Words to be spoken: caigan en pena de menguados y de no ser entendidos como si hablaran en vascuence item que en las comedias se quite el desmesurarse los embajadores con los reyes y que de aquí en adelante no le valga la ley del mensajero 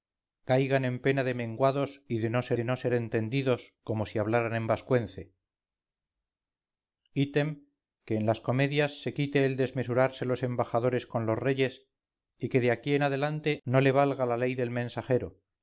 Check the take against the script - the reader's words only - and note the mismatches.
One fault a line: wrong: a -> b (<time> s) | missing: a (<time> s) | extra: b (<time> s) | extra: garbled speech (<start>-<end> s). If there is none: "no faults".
extra: de no ser (2.5 s)